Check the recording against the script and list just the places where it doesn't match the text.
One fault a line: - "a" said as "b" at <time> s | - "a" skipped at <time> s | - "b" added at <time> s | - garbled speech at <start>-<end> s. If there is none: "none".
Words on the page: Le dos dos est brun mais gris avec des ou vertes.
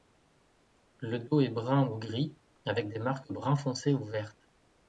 - "dos" skipped at 1.4 s
- "mais" said as "ou" at 1.9 s
- "marques brun foncé" added at 3.0 s